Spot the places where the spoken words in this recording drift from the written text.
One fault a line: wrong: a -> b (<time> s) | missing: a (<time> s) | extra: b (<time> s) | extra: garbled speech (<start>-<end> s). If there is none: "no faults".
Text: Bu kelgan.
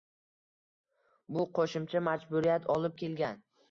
extra: qo‘shimcha majburiyat olib (1.6 s)